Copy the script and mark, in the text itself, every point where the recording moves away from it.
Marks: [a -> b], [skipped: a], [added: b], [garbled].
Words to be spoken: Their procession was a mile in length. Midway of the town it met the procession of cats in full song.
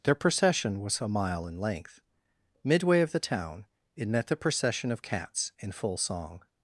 Their procession was a mile in length. Midway of the town it met the procession of cats in full song.